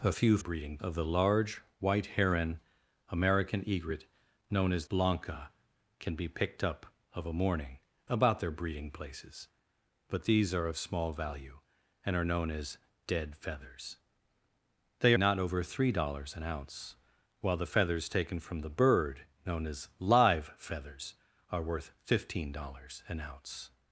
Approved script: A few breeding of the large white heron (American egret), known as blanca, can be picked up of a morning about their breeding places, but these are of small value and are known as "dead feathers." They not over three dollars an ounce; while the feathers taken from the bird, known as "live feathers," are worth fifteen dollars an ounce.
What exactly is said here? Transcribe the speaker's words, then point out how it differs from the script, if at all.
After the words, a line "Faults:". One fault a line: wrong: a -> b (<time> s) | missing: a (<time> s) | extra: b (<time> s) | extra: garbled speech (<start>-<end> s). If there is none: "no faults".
A few breeding of the large white heron (American egret), known as blanca, can be picked up of a morning about their breeding places, but these are of small value and are known as "dead feathers." They not over three dollars an ounce; while the feathers taken from the bird, known as "live feathers," are worth fifteen dollars an ounce.
Faults:
no faults